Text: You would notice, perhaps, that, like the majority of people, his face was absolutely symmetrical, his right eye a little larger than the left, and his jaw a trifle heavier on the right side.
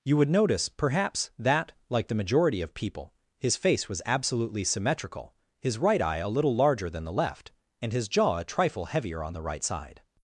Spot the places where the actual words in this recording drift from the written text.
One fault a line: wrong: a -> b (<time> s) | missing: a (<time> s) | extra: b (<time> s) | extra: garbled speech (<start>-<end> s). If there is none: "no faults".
no faults